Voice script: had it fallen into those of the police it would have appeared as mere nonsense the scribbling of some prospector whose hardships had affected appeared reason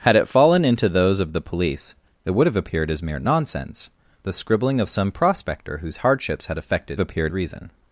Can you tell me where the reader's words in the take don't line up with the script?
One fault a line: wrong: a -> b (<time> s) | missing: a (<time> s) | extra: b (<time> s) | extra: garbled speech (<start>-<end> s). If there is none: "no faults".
no faults